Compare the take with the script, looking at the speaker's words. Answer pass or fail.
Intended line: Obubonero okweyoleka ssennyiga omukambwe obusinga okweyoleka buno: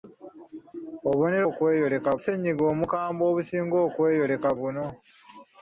pass